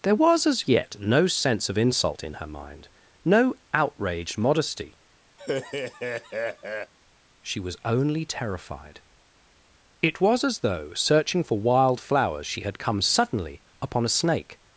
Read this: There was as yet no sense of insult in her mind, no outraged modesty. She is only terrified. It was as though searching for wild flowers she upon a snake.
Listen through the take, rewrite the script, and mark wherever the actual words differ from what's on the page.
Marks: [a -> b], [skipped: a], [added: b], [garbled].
There was as yet no sense of insult in her mind, no outraged modesty. She [is -> was] only terrified. It was as though searching for wild flowers she [added: had come suddenly] upon a snake.